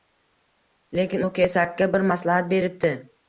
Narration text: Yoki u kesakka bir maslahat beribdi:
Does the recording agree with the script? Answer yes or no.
no